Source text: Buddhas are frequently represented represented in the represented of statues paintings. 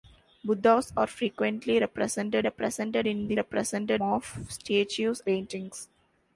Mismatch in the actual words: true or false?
false